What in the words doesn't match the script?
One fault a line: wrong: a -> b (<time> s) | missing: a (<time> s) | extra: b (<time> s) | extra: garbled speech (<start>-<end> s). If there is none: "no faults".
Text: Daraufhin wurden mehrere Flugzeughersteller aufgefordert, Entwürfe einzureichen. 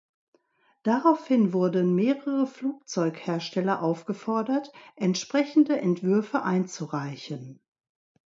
extra: entsprechende (5.0 s)